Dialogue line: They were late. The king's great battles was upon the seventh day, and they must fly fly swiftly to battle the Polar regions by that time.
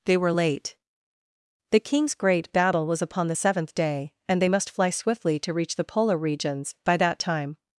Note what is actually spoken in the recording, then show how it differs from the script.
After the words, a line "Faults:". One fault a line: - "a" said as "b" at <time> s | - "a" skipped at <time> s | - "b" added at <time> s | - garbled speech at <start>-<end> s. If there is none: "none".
They were late. The king's great battle was upon the seventh day, and they must fly swiftly to reach the Polar regions by that time.
Faults:
- "battles" said as "battle" at 2.5 s
- "fly" skipped at 4.9 s
- "battle" said as "reach" at 5.5 s